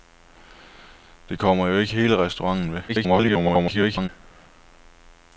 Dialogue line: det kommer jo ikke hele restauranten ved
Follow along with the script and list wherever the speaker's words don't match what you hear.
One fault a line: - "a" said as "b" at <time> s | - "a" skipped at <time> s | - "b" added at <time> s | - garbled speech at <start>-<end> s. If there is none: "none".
- garbled speech at 2.9-4.1 s